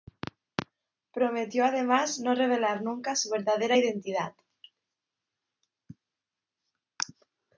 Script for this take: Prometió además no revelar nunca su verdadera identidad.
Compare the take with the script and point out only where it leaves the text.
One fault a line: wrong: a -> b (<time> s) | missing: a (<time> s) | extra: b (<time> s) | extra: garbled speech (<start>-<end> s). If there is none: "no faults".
no faults